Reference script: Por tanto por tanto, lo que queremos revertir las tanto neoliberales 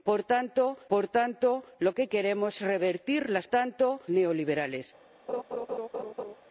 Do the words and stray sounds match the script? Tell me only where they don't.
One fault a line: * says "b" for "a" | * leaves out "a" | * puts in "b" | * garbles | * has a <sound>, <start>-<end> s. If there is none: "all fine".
* has a laugh, 5.3-6.4 s